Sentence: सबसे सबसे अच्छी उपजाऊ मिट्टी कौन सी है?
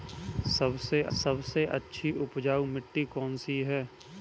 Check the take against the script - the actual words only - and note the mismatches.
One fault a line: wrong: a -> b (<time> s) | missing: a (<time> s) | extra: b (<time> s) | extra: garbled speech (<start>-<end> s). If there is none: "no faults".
no faults